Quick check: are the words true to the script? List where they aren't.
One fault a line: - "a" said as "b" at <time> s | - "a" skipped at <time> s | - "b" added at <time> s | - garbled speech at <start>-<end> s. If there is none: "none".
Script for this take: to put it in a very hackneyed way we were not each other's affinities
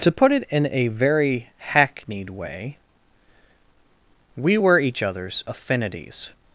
- "not" skipped at 4.8 s